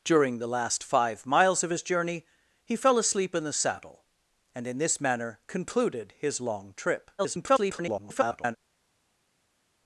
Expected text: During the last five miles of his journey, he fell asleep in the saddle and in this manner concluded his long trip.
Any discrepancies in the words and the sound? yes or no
yes